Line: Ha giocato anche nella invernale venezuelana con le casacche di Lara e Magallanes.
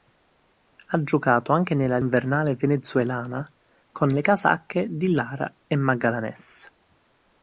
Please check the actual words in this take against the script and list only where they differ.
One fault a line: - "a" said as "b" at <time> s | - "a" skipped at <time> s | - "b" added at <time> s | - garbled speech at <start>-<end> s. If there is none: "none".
none